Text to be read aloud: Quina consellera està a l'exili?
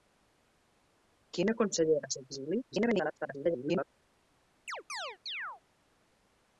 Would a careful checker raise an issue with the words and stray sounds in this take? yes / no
yes